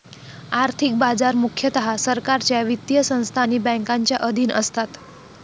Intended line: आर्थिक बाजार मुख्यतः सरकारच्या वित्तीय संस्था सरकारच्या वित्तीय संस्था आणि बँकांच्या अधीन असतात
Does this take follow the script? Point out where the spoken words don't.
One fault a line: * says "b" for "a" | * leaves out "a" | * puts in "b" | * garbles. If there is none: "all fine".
* leaves out "सरकारच्या वित्तीय संस्था"